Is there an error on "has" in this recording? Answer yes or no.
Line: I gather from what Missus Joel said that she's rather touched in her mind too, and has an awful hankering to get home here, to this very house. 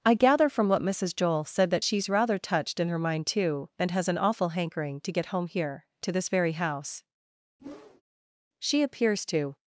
no